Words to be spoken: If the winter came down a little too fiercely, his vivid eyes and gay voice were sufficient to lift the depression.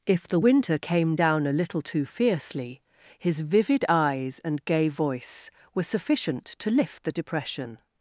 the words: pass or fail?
pass